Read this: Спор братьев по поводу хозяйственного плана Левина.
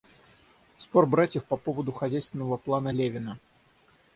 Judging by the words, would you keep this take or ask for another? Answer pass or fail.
pass